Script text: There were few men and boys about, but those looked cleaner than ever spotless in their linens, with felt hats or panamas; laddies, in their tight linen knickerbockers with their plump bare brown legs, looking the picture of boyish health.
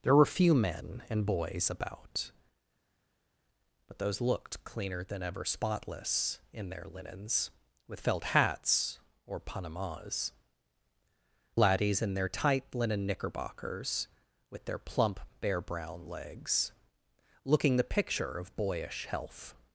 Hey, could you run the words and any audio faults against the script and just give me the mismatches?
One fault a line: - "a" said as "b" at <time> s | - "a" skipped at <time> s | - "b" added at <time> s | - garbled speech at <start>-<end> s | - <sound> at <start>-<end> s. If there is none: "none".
none